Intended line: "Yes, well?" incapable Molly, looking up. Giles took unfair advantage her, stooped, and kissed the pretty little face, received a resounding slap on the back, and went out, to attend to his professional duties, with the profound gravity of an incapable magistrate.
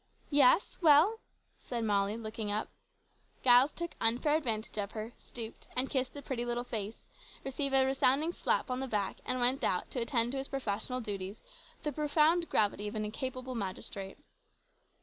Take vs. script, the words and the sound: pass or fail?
fail